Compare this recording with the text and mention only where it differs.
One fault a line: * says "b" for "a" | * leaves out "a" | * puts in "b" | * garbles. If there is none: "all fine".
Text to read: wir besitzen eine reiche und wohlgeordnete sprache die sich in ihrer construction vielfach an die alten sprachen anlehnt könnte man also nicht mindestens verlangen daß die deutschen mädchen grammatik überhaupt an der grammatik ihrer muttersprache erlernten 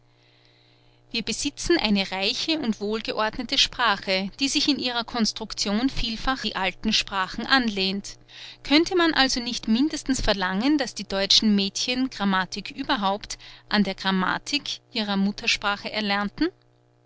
* leaves out "an"